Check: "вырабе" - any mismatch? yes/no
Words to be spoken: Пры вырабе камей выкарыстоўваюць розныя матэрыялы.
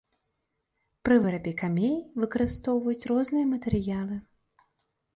no